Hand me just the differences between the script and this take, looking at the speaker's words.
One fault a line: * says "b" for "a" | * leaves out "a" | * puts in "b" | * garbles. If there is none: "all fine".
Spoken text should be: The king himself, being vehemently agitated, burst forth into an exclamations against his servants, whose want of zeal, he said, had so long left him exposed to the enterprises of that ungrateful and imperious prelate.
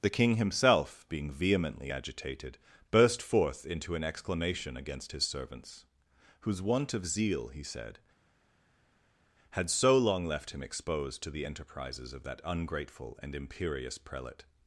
* says "exclamation" for "exclamations"